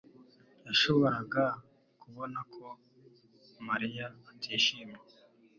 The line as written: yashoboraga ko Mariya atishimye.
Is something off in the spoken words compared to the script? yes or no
yes